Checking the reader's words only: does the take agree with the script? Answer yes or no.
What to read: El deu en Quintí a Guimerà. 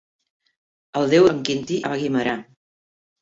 yes